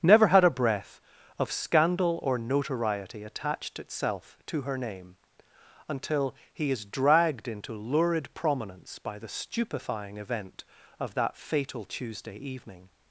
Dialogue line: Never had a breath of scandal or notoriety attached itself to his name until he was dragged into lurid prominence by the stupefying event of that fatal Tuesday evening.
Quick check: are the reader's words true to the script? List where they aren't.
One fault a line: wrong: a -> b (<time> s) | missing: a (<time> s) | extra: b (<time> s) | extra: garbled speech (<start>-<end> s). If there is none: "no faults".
wrong: his -> her (4.6 s)
wrong: was -> is (6.7 s)